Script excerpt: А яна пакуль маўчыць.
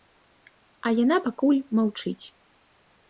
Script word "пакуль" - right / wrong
right